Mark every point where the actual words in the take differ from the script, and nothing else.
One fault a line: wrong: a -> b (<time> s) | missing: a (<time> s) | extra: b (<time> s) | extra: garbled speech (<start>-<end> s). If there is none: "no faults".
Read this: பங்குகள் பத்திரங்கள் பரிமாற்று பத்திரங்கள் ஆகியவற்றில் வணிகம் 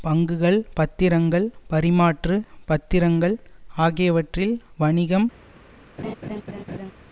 no faults